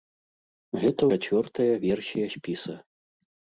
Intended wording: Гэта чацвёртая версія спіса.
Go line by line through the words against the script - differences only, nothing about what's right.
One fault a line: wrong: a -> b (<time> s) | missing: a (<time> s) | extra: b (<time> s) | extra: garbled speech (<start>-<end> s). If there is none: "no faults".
no faults